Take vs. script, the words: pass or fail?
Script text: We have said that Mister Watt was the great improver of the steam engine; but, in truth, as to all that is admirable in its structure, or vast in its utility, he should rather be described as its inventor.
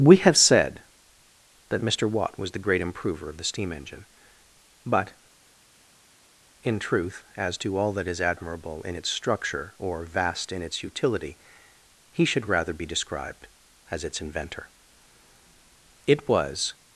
fail